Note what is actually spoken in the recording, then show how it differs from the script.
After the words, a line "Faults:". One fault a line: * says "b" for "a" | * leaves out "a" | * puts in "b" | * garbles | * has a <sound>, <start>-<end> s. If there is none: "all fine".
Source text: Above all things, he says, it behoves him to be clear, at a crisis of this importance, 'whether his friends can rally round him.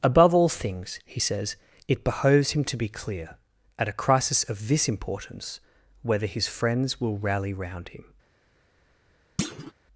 Above all things, he says, it behoves him to be clear, at a crisis of this importance, 'whether his friends will rally round him.
Faults:
* says "will" for "can"
* has a thud, 9.4-9.7 s